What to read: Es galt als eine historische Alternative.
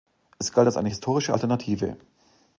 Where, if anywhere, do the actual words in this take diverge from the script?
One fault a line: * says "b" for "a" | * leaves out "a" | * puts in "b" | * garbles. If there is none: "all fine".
all fine